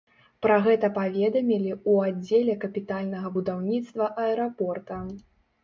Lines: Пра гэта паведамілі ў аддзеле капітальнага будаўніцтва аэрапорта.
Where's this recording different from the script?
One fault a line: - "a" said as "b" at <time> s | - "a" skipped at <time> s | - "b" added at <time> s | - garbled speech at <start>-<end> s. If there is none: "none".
none